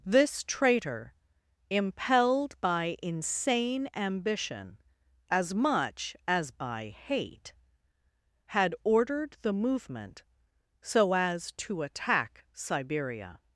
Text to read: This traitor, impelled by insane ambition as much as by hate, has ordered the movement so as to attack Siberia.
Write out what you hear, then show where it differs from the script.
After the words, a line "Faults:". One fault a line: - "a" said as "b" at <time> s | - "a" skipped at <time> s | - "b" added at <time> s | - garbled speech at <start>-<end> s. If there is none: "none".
This traitor, impelled by insane ambition as much as by hate, had ordered the movement so as to attack Siberia.
Faults:
- "has" said as "had" at 8.4 s